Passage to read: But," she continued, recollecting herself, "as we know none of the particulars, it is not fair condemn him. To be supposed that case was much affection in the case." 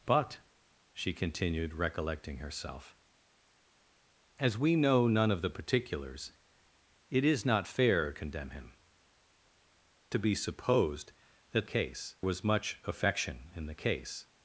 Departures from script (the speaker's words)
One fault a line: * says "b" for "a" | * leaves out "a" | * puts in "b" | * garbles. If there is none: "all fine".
all fine